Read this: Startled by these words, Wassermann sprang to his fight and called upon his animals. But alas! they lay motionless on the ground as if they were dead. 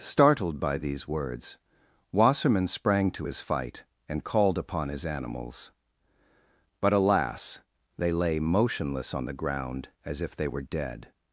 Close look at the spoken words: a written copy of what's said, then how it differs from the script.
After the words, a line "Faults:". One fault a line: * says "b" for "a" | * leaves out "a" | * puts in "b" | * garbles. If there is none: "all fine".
Startled by these words, Wassermann sprang to his fight and called upon his animals. But alas! they lay motionless on the ground as if they were dead.
Faults:
all fine